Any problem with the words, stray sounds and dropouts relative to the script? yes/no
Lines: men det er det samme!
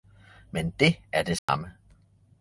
yes